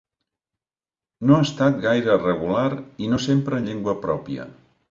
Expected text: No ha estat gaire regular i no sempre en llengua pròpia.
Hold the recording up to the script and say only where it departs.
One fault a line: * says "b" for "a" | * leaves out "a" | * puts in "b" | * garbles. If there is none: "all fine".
all fine